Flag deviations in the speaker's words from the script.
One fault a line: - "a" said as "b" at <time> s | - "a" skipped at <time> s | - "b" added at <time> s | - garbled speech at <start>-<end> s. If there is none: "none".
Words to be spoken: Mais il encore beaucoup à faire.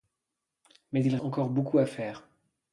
none